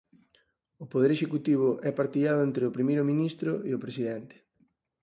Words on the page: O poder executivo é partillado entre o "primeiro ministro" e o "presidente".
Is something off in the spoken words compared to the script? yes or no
no